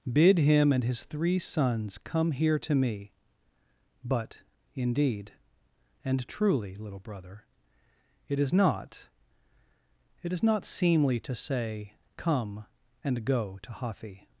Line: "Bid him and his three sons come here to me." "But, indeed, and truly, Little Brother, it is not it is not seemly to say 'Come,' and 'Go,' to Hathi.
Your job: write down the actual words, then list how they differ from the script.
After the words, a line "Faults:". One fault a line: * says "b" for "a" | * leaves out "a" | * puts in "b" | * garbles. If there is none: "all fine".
"Bid him and his three sons come here to me." "But, indeed, and truly, Little Brother, it is not it is not seemly to say 'Come,' and 'Go,' to Hathi.
Faults:
all fine